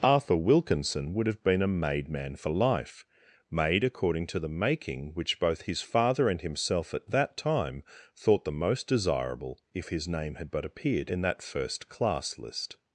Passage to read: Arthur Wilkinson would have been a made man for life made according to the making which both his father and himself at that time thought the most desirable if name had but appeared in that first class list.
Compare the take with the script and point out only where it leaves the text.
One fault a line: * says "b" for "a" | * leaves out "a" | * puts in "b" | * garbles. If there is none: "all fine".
* puts in "his"